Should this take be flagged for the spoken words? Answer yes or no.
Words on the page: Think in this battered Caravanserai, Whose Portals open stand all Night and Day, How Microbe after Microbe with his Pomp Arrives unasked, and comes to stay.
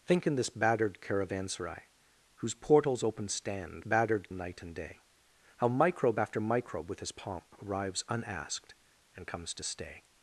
yes